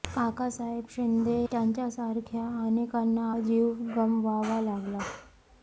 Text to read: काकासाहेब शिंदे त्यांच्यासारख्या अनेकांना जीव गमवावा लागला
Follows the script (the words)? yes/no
yes